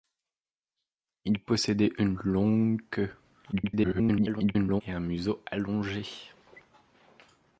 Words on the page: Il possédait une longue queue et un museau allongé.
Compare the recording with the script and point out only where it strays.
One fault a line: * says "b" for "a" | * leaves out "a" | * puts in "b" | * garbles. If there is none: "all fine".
* garbles